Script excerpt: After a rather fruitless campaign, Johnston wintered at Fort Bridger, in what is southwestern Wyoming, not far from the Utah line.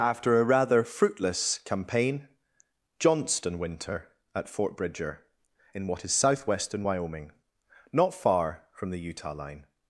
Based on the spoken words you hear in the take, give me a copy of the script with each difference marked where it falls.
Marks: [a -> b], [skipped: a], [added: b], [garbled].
After a rather fruitless campaign, Johnston [wintered -> winter] at Fort Bridger, in what is southwestern Wyoming, not far from the Utah line.